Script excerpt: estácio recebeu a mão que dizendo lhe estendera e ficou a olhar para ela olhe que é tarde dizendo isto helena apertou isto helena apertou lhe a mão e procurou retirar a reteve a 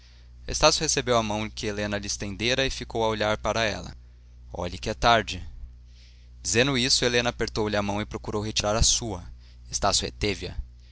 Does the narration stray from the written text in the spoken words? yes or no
yes